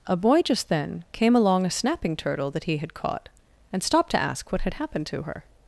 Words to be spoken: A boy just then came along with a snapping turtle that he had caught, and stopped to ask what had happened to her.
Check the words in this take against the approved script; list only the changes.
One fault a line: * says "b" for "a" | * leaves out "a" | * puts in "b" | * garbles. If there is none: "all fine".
* leaves out "with"